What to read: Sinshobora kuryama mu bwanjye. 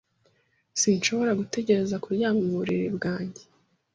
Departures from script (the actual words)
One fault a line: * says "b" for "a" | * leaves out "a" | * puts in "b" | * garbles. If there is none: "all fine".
* puts in "gutegereza"
* puts in "buriri"